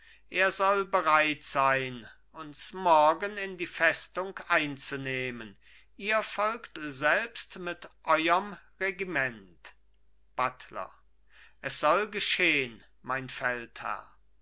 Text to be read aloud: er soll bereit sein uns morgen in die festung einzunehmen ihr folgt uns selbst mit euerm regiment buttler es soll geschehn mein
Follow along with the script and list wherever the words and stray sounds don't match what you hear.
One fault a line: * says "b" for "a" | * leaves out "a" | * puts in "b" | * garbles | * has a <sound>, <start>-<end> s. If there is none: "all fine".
* leaves out "uns"